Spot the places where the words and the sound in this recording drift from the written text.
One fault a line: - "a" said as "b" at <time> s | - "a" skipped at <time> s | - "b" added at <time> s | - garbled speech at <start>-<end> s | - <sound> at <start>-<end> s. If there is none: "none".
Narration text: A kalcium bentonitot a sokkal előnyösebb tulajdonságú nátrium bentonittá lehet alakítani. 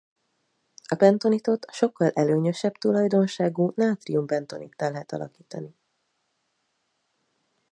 - "kalcium" skipped at 1.0 s